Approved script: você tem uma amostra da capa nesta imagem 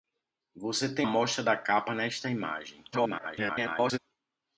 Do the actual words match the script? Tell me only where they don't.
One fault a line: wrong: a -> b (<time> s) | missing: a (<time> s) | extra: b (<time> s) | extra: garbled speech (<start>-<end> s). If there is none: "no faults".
missing: uma (1.1 s)
extra: garbled speech (2.9-4.0 s)